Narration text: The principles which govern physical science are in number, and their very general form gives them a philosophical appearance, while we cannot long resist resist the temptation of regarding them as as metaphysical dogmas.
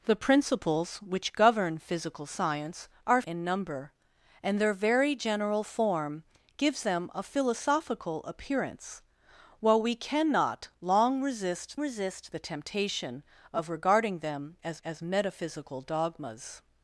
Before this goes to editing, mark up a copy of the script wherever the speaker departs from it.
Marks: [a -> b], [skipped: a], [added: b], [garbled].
The principles which govern physical science are in number, and their very general form gives them a philosophical appearance, while we cannot long resist resist the temptation of regarding them as as metaphysical dogmas.